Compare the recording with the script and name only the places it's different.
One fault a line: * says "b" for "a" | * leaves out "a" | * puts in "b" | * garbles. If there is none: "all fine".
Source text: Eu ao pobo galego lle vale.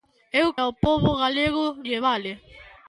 all fine